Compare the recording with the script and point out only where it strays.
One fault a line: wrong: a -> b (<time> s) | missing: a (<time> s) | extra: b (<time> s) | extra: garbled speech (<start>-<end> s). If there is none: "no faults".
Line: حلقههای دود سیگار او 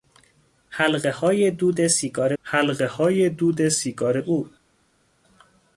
extra: حلقههای دود سیگار (2.4 s)